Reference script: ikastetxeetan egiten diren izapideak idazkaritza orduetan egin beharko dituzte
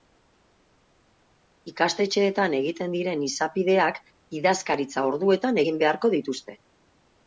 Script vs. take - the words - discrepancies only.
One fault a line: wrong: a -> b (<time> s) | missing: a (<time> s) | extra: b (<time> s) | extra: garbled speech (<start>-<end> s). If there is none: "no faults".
no faults